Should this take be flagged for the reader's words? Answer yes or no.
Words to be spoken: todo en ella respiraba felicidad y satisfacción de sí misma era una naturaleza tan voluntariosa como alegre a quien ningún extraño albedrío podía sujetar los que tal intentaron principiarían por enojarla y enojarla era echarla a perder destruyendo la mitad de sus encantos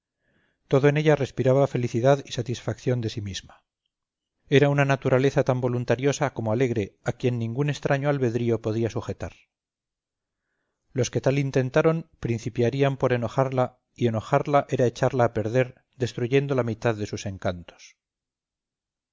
no